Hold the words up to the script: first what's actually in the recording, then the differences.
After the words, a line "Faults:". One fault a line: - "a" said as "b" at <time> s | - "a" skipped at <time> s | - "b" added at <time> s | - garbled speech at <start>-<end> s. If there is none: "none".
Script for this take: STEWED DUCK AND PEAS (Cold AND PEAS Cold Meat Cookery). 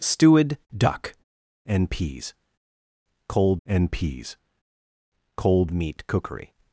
STEWED DUCK AND PEAS (Cold AND PEAS Cold Meat Cookery).
Faults:
none